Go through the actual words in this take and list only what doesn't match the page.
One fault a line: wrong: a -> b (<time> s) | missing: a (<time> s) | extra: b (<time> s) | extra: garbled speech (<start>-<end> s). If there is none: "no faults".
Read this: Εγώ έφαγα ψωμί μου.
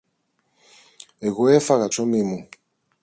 no faults